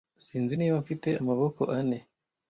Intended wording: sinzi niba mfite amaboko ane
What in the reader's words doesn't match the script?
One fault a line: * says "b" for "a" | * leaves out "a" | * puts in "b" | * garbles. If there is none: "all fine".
all fine